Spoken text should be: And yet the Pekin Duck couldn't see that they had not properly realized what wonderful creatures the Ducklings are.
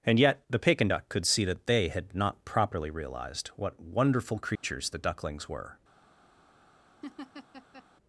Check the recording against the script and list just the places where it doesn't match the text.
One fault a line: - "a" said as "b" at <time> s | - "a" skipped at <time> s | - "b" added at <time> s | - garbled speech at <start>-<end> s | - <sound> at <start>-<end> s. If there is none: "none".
- "couldn't" said as "could" at 1.1 s
- dropout at 4.6-4.6 s
- "are" said as "were" at 5.5 s
- laugh at 7.0-7.9 s